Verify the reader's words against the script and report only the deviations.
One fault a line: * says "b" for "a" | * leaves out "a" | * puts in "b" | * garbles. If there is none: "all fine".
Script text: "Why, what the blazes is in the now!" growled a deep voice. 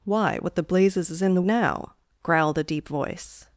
all fine